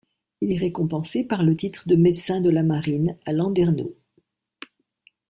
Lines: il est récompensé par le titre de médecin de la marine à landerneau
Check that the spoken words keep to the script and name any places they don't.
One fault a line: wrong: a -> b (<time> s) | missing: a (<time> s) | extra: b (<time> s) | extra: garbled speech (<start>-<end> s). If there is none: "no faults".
no faults